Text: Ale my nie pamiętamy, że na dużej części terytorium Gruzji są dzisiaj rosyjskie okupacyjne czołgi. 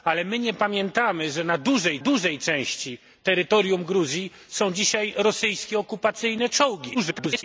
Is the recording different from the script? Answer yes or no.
yes